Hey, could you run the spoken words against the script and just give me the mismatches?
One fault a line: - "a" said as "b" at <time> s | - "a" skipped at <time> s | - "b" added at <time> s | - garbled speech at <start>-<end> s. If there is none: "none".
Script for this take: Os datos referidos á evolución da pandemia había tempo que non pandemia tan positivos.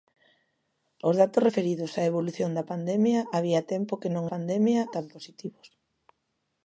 none